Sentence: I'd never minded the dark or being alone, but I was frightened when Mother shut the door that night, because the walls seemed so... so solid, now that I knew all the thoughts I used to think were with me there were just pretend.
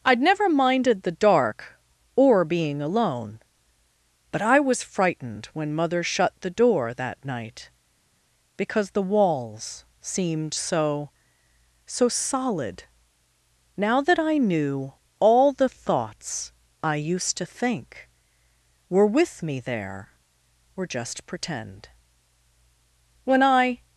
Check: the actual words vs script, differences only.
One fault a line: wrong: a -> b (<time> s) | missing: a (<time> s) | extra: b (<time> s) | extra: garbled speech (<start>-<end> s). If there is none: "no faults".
extra: When I (23.2 s)